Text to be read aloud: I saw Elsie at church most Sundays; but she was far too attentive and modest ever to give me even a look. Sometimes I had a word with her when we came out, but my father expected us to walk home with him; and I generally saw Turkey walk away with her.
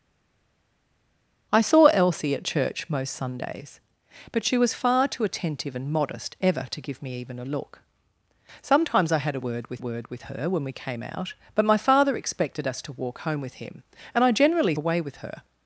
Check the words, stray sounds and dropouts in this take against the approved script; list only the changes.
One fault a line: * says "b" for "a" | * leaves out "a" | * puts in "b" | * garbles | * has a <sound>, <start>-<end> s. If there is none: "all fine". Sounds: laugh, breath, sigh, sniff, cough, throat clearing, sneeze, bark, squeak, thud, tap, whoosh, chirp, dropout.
* puts in "word with"
* leaves out "saw Turkey walk"